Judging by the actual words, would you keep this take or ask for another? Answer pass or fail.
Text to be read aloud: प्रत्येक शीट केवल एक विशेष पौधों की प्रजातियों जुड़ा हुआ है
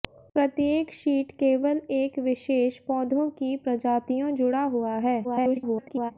fail